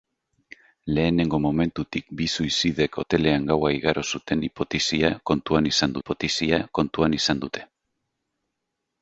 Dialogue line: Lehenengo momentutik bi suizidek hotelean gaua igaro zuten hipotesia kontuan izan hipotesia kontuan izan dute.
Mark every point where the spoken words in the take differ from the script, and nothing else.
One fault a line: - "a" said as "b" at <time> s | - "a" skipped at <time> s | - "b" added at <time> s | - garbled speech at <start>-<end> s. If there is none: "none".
none